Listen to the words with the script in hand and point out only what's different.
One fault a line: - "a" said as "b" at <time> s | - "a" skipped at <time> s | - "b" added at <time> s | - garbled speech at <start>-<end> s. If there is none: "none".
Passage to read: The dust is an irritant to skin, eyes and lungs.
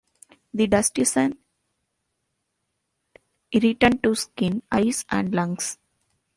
none